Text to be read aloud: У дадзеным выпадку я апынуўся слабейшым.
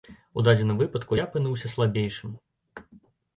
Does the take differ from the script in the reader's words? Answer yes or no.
no